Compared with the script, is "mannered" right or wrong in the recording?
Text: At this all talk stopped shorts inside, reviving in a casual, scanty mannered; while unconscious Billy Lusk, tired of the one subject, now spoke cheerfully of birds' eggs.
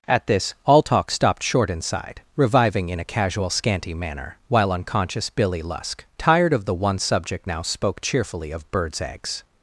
wrong